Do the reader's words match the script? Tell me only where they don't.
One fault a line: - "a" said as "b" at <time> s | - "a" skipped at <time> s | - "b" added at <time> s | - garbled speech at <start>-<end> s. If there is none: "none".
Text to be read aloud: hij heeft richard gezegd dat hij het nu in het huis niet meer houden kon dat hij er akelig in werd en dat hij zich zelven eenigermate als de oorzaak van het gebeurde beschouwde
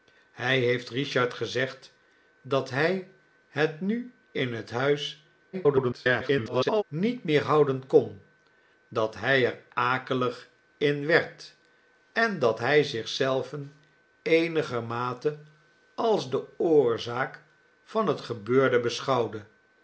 - garbled speech at 5.5-6.8 s